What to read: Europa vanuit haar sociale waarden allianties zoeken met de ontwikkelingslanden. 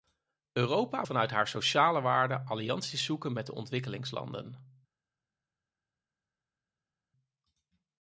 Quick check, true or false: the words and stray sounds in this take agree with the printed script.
true